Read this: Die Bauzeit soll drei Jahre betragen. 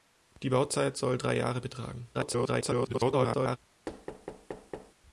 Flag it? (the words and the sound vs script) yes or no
yes